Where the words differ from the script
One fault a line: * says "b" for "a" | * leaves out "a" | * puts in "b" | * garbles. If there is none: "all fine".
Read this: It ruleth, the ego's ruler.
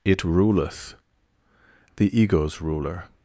all fine